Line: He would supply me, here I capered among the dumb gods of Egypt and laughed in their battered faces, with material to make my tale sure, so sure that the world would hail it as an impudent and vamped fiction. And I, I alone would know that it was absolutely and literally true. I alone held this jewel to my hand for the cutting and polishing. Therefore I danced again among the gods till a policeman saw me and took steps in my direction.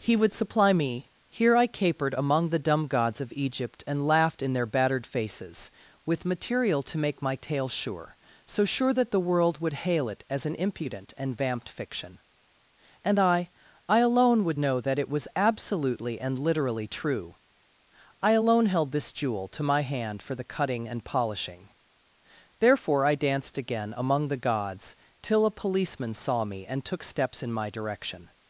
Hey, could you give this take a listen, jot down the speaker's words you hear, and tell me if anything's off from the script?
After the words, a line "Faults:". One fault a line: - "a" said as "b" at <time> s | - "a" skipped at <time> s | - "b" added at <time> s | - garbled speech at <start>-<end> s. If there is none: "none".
He would supply me, here I capered among the dumb gods of Egypt and laughed in their battered faces, with material to make my tale sure, so sure that the world would hail it as an impudent and vamped fiction. And I, I alone would know that it was absolutely and literally true. I alone held this jewel to my hand for the cutting and polishing. Therefore I danced again among the gods till a policeman saw me and took steps in my direction.
Faults:
none